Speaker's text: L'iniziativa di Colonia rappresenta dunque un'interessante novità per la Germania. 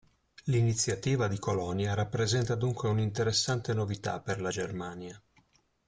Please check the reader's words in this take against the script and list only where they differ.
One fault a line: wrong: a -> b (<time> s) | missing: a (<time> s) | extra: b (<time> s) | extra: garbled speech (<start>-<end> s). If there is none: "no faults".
no faults